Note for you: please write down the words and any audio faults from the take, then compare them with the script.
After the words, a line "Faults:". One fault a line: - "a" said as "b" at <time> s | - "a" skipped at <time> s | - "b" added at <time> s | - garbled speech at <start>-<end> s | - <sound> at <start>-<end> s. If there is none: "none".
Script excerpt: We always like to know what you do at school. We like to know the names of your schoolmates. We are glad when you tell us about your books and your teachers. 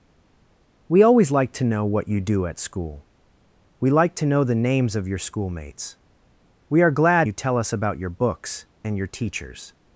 We always like to know what you do at school. We like to know the names of your schoolmates. We are glad you tell us about your books and your teachers.
Faults:
- "when" skipped at 7.3 s